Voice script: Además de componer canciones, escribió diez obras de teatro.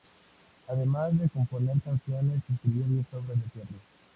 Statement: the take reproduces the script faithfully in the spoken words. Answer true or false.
true